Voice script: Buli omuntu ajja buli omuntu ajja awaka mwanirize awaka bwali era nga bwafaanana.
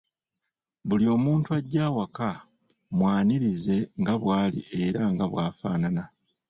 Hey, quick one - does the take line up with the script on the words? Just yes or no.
no